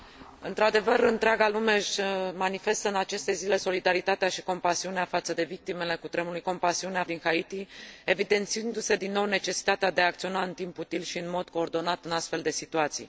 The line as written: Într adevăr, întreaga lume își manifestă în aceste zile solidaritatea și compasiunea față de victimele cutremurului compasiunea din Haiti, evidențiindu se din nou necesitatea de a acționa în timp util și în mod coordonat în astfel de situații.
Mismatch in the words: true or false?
false